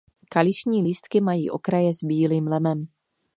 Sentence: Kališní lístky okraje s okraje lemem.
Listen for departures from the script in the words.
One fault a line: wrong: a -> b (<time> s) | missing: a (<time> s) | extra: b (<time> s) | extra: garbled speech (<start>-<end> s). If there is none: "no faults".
extra: mají (1.2 s)
wrong: okraje -> bílým (2.0 s)